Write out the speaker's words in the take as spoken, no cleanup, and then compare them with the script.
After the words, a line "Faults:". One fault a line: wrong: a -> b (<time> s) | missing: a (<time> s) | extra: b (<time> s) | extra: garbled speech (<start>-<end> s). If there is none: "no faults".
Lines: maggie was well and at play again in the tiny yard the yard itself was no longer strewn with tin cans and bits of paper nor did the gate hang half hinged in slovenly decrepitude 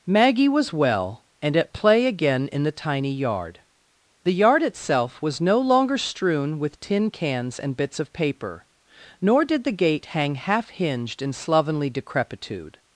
maggie was well and at play again in the tiny yard the yard itself was no longer strewn with tin cans and bits of paper nor did the gate hang half hinged in slovenly decrepitude
Faults:
no faults